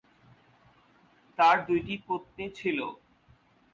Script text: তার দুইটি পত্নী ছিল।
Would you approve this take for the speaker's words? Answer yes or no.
yes